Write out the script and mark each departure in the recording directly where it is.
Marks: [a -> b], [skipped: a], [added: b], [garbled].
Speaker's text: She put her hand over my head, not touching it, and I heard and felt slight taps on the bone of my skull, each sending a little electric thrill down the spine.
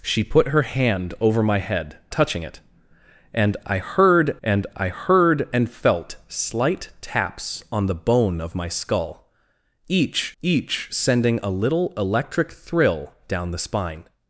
She put her hand over my head, [skipped: not] touching it, and I heard and [added: I heard and] felt slight taps on the bone of my skull, each [added: each] sending a little electric thrill down the spine.